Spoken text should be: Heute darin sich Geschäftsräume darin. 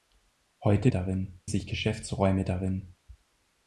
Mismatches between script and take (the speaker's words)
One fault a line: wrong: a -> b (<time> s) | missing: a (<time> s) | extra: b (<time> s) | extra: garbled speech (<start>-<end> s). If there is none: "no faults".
no faults